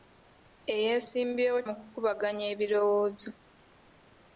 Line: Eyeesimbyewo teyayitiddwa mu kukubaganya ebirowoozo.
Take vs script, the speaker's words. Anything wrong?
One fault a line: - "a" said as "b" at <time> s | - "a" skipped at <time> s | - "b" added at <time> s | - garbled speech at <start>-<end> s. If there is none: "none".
- "teyayitiddwa" skipped at 1.6 s